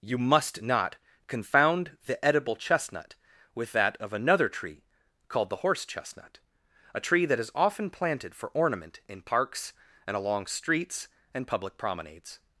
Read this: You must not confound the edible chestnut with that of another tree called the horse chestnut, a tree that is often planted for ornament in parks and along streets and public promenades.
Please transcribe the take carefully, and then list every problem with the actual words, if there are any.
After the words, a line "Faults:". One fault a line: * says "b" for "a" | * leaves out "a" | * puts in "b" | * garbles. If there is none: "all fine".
You must not confound the edible chestnut with that of another tree called the horse chestnut, a tree that is often planted for ornament in parks and along streets and public promenades.
Faults:
all fine